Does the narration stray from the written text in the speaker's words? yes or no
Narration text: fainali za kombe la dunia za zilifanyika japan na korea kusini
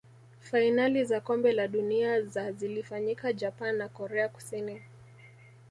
no